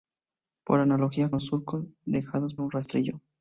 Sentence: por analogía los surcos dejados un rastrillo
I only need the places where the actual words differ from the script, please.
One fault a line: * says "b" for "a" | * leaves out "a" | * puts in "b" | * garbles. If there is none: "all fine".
all fine